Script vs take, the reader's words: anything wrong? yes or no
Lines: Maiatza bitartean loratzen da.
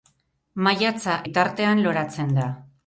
no